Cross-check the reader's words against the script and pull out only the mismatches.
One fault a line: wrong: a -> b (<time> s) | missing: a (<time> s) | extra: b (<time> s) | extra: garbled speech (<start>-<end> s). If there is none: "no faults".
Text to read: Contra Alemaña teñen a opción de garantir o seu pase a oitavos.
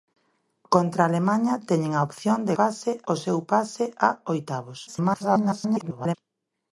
wrong: garantir -> pase (2.6 s)
extra: garbled speech (4.9-6.2 s)